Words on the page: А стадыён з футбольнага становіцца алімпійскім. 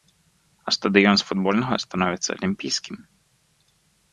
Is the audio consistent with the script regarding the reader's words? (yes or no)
yes